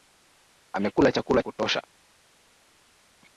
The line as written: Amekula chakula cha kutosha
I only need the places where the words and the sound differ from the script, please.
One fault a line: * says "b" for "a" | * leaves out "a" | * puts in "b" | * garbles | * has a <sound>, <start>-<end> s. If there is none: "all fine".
* leaves out "cha"